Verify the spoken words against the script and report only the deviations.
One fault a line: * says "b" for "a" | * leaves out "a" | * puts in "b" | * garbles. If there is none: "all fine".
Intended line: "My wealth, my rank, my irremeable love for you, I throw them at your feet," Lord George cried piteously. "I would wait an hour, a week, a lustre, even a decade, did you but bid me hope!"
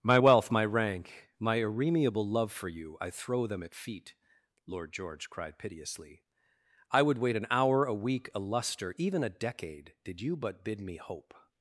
* leaves out "your"